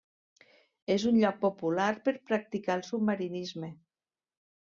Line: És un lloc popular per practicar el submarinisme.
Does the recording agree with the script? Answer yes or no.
yes